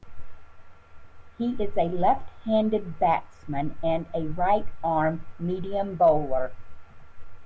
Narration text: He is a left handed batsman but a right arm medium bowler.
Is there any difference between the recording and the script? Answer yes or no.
yes